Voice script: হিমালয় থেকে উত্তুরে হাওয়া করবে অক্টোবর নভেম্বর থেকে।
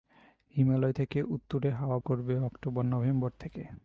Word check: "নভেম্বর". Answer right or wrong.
right